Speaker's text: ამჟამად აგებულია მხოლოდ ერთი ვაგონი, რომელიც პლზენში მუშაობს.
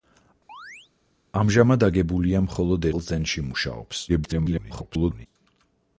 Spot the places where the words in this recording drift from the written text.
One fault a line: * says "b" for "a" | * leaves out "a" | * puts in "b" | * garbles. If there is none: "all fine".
* leaves out "ერთი ვაგონი რომელიც"
* garbles